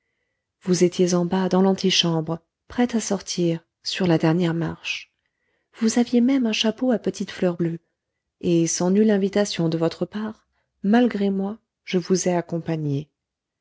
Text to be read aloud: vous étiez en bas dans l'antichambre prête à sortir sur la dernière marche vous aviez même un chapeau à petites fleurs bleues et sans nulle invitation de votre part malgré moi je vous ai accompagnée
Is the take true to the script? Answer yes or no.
yes